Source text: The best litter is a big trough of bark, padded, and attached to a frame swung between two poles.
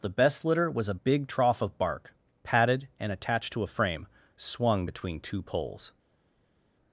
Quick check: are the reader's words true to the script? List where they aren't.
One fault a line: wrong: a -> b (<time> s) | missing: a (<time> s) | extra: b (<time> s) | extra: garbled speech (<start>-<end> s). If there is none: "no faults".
wrong: is -> was (0.7 s)